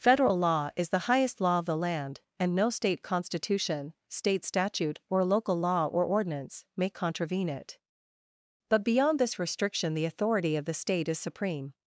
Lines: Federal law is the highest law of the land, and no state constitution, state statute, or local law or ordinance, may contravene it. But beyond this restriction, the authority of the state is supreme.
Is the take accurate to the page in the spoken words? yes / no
yes